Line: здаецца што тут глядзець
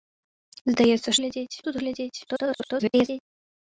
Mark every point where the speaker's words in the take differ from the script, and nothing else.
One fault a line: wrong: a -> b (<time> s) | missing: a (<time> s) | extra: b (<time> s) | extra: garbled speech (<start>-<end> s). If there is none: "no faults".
wrong: што -> глядзець (1.2 s)
extra: garbled speech (2.3-3.2 s)